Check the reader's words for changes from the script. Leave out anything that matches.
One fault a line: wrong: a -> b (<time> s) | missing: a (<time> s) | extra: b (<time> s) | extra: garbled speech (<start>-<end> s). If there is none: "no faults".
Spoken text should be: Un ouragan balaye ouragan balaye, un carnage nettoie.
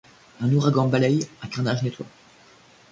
missing: ouragan balaye (1.2 s)